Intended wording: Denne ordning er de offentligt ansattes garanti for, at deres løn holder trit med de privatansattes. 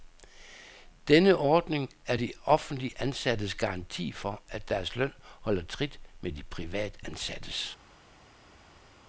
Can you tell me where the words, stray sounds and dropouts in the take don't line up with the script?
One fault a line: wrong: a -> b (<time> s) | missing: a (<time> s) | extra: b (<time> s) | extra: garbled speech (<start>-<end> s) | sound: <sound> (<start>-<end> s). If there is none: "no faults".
no faults